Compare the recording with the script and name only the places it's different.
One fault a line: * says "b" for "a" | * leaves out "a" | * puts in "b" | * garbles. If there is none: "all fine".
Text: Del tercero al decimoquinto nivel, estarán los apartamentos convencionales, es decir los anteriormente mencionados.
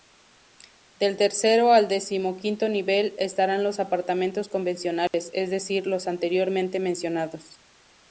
all fine